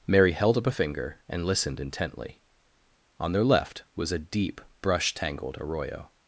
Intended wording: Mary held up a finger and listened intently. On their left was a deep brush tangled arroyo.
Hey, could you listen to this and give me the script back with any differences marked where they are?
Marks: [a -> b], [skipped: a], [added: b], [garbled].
Mary held up a finger and listened intently. On their left was a deep brush tangled arroyo.